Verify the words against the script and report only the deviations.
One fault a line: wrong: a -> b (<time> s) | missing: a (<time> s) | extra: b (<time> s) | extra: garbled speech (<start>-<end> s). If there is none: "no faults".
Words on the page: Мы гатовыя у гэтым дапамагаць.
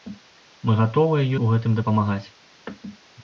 no faults